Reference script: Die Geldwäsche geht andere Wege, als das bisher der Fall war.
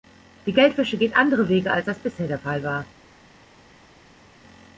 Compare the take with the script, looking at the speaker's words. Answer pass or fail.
pass